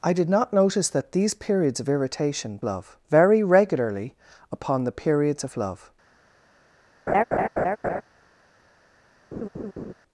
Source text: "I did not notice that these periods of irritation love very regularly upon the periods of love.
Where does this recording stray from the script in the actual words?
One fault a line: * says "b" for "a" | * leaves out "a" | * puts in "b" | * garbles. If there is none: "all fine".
all fine